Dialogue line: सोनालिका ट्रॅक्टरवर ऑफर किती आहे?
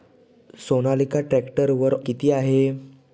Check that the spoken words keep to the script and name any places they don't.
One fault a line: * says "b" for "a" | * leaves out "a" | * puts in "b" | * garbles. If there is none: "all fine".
* leaves out "ऑफर"